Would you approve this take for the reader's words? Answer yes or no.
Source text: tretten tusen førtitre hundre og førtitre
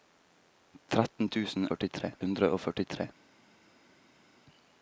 yes